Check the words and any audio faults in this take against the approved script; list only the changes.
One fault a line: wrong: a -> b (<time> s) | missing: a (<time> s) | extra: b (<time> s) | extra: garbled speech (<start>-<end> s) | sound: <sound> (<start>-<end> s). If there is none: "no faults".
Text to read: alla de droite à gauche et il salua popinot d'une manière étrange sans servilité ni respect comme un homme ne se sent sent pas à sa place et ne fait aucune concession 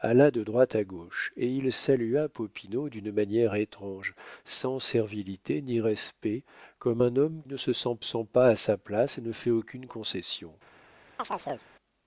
sound: chirp (11.2-11.7 s)